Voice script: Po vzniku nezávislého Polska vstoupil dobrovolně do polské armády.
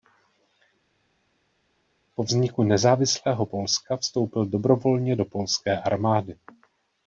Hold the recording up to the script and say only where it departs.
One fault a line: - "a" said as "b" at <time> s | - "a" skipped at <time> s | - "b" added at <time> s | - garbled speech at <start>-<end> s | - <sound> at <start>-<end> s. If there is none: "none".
none